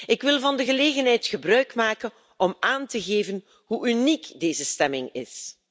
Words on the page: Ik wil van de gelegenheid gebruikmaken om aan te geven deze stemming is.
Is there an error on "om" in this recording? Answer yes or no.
no